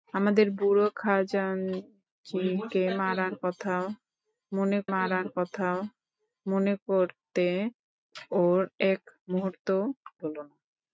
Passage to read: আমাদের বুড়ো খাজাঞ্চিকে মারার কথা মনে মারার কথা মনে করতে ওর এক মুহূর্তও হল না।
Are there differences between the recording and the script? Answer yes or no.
no